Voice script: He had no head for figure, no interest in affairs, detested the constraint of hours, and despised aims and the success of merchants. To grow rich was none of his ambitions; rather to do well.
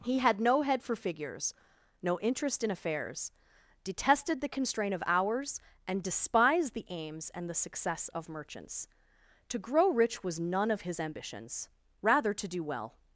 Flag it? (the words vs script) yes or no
yes